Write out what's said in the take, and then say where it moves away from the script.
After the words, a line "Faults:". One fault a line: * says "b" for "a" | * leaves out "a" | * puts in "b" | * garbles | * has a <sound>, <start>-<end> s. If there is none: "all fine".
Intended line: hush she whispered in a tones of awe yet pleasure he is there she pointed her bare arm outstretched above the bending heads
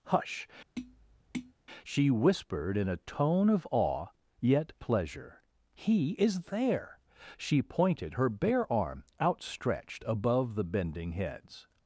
hush she whispered in a tone of awe yet pleasure he is there she pointed her bare arm outstretched above the bending heads
Faults:
* has a tap, 0.8-1.5 s
* says "tone" for "tones"